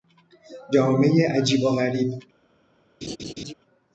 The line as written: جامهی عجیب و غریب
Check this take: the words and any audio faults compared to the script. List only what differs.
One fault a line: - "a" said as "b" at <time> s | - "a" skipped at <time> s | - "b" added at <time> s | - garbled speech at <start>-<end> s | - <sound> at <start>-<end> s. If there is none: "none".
- laugh at 3.0-3.5 s